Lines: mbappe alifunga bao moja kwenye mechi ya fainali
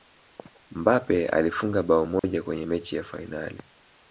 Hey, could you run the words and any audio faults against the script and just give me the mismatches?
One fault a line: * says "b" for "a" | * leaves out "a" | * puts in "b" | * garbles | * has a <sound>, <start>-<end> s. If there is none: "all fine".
* has a dropout, 2.2-2.2 s